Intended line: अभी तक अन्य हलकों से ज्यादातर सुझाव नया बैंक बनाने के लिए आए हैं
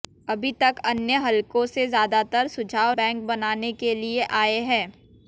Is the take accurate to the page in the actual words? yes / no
no